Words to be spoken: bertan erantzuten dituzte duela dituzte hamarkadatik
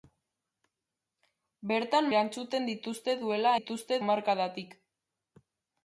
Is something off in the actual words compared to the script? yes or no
no